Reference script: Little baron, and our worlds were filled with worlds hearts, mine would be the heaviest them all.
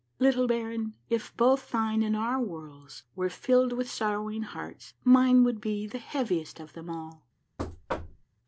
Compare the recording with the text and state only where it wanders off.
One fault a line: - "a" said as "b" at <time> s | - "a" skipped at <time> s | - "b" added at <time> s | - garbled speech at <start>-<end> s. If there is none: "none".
- "if both thine" added at 1.1 s
- "worlds" said as "sorrowing" at 3.9 s
- "of" added at 6.6 s